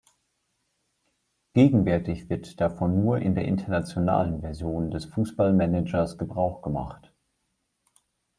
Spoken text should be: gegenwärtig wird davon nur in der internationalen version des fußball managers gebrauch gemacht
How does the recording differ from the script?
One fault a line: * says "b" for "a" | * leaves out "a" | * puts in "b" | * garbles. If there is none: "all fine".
all fine